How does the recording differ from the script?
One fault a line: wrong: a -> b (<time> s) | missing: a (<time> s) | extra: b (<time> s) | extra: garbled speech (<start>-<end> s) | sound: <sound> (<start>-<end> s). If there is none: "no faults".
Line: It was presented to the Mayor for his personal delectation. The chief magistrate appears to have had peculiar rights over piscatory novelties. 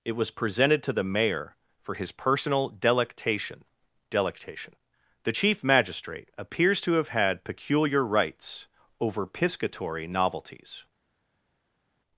extra: delectation (4.1 s)